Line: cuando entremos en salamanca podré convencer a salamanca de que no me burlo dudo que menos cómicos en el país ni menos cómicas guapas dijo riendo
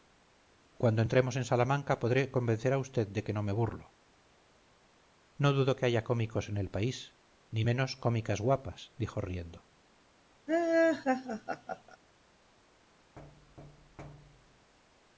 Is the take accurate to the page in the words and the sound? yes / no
no